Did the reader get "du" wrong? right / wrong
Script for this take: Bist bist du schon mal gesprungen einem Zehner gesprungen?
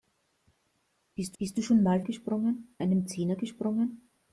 right